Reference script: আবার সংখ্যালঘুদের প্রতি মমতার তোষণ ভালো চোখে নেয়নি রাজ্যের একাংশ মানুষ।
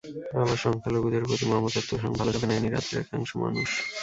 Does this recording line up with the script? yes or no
yes